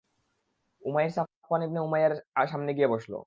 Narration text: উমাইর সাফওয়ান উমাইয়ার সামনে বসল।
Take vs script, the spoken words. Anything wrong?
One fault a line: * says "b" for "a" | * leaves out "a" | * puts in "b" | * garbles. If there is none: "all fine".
* puts in "ইবনে"
* puts in "গিয়ে"